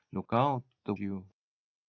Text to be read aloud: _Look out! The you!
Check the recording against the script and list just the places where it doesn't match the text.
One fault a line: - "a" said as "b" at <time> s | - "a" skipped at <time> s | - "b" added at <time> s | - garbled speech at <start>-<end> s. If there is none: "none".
none